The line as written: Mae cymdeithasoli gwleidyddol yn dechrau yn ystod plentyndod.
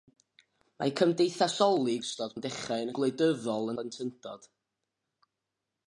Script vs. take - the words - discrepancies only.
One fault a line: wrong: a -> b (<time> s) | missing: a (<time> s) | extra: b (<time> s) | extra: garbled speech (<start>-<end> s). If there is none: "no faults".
wrong: gwleidyddol -> ystod (2.0 s)
wrong: ystod -> gwleidyddol (3.0 s)